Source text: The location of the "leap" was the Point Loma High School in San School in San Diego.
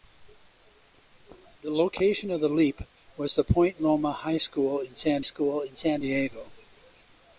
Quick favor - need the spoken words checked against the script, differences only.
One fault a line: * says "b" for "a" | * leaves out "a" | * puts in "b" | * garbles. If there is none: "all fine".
all fine